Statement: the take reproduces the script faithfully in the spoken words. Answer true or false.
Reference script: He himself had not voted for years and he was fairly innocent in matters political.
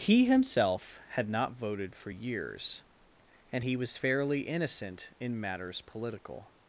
true